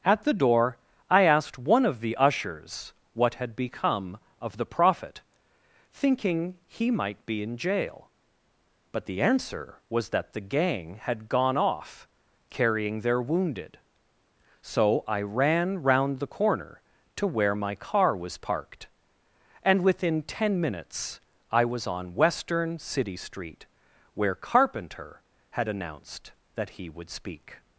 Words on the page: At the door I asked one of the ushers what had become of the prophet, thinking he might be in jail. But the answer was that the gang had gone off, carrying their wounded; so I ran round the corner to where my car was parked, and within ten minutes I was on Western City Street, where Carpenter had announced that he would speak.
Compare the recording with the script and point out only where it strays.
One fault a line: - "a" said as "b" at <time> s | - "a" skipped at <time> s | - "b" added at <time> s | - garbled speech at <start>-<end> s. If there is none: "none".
none